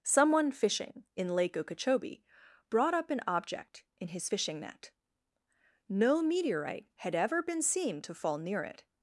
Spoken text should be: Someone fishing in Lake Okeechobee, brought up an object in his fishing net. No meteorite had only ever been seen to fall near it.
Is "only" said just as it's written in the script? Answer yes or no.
no